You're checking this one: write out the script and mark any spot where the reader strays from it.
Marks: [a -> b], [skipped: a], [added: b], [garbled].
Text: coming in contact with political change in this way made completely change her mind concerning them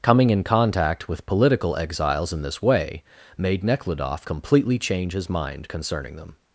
coming in contact with political [change -> exiles] in this way made [added: nekhludoff] completely change [her -> his] mind concerning them